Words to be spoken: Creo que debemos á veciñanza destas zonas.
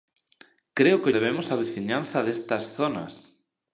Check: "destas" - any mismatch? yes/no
no